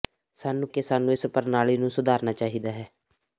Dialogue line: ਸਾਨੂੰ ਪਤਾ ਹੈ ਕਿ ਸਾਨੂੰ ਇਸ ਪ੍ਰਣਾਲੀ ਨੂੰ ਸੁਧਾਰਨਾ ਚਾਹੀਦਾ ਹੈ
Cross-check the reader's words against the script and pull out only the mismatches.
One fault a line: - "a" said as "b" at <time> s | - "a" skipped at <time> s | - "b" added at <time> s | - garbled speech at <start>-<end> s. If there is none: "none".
- "ਪਤਾ ਹੈ" skipped at 0.7 s